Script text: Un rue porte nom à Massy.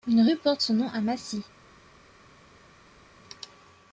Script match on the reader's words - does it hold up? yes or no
no